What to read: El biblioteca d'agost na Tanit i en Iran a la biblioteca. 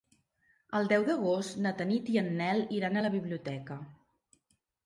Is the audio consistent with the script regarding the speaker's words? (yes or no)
no